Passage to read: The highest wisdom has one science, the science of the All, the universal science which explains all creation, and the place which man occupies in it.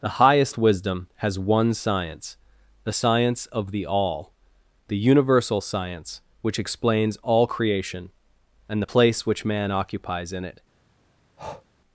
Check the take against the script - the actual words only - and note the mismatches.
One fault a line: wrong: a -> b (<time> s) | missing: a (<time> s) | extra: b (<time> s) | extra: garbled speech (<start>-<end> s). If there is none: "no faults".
no faults